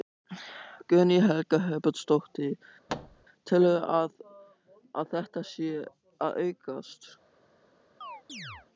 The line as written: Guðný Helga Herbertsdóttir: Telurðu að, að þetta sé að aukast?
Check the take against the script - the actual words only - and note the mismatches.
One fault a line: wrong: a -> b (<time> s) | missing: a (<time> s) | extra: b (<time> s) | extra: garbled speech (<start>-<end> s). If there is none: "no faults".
no faults